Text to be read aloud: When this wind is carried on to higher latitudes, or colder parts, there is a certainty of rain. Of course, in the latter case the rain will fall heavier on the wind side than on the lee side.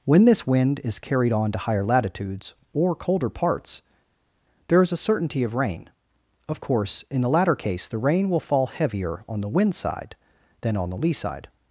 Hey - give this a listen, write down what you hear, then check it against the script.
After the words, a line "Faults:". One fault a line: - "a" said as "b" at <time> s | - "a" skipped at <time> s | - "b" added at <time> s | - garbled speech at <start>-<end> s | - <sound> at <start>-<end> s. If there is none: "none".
When this wind is carried on to higher latitudes, or colder parts, there is a certainty of rain. Of course, in the latter case the rain will fall heavier on the wind side than on the lee side.
Faults:
none